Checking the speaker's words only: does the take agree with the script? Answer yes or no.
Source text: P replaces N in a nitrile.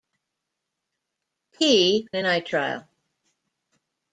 no